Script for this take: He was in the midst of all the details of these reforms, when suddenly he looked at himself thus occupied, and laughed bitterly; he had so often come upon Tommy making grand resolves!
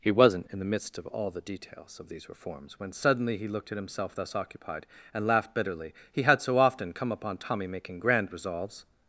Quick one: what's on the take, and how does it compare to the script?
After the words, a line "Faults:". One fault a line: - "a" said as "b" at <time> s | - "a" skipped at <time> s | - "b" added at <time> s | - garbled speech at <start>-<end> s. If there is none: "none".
He wasn't in the midst of all the details of these reforms, when suddenly he looked at himself thus occupied, and laughed bitterly; he had so often come upon Tommy making grand resolves!
Faults:
- "was" said as "wasn't" at 0.1 s